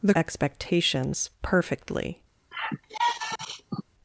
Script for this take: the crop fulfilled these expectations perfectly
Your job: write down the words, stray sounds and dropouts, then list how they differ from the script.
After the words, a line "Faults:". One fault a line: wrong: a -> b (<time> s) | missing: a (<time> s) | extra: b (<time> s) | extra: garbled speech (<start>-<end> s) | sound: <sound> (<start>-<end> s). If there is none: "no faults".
the expectations perfectly
Faults:
missing: crop fulfilled these (0.1 s)
sound: sigh (2.5-3.8 s)